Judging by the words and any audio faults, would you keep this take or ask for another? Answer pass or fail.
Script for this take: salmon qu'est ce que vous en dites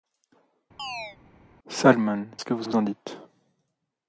fail